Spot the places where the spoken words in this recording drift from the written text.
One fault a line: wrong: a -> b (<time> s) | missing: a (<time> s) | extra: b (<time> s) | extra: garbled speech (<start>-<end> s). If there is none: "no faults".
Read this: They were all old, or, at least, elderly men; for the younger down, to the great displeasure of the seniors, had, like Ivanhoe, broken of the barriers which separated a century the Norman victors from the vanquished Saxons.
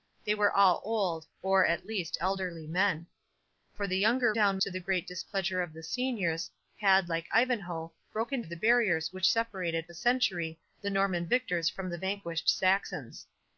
no faults